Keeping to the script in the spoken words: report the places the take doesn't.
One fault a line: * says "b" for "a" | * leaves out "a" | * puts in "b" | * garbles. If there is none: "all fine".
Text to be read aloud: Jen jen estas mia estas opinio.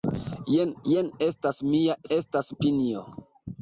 all fine